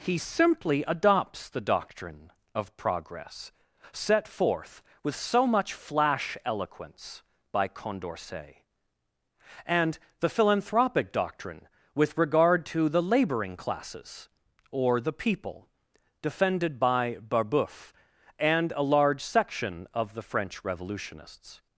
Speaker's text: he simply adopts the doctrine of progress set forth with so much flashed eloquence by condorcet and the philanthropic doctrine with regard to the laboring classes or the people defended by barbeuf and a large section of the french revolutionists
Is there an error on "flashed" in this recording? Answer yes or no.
yes